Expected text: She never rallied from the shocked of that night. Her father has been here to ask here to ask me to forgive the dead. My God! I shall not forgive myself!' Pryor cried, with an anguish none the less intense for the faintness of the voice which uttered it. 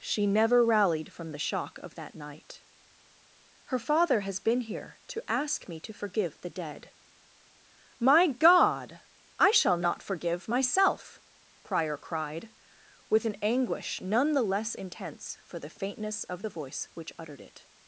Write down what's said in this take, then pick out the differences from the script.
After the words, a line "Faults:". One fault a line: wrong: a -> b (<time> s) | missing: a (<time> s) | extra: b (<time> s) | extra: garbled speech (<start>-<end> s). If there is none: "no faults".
She never rallied from the shock of that night. Her father has been here to ask me to forgive the dead. My God! I shall not forgive myself!' Pryor cried, with an anguish none the less intense for the faintness of the voice which uttered it.
Faults:
wrong: shocked -> shock (1.4 s)
missing: here to ask (5.7 s)